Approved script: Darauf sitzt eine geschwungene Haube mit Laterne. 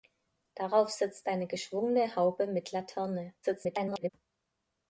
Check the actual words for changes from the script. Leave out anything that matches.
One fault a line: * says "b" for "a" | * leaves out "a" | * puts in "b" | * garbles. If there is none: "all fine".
* garbles